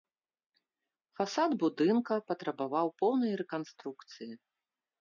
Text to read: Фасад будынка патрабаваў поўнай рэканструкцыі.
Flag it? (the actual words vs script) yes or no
no